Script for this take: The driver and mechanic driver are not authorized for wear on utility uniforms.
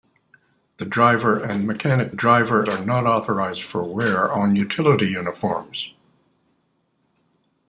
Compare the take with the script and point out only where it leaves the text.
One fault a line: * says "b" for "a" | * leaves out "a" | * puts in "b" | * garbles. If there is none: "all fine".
all fine